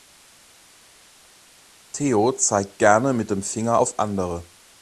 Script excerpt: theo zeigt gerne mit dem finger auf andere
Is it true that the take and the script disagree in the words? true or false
false